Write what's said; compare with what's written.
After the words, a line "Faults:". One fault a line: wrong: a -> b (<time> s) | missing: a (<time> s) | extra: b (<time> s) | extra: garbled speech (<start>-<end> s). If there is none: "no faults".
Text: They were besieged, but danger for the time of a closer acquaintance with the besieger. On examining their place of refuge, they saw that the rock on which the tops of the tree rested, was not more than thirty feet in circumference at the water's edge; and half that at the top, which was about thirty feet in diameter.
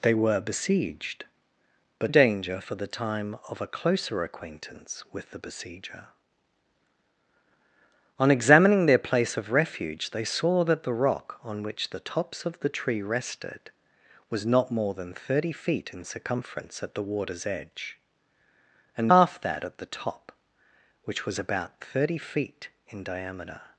They were besieged, but danger for the time of a closer acquaintance with the besieger. On examining their place of refuge, they saw that the rock on which the tops of the tree rested, was not more than thirty feet in circumference at the water's edge; and half that at the top, which was about thirty feet in diameter.
Faults:
no faults